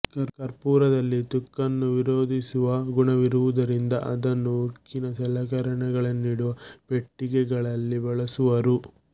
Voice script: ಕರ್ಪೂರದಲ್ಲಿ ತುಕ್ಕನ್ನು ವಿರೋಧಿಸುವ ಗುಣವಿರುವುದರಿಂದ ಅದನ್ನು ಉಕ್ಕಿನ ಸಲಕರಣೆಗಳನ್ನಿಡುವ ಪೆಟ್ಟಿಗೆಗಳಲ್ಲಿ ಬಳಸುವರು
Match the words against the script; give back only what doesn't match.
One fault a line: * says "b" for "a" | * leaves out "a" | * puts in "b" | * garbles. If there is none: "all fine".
all fine